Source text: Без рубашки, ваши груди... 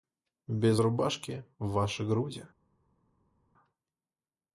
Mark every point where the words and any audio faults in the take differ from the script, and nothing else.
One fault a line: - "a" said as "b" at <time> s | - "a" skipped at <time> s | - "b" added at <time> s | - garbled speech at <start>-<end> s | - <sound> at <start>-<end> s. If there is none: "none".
none